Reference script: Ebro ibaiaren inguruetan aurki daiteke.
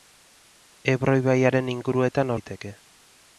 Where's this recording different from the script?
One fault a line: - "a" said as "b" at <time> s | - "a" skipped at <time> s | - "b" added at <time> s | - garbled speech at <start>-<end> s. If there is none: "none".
- "aurki" skipped at 2.4 s